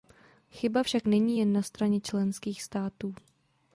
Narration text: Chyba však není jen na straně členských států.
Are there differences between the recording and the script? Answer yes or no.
no